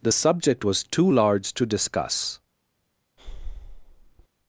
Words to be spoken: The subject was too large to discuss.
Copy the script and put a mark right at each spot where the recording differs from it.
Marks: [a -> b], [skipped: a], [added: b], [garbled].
The subject was too large to discuss.